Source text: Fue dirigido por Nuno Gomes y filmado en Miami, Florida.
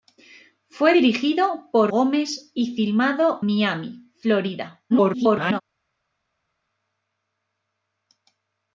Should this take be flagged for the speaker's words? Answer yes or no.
yes